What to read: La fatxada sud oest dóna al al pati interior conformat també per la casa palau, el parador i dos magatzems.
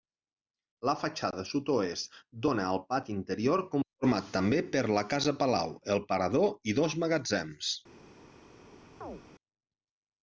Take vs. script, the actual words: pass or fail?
fail